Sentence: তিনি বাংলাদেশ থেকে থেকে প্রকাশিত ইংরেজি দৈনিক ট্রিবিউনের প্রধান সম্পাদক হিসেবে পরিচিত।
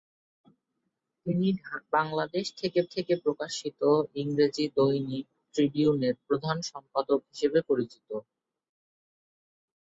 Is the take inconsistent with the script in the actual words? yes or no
no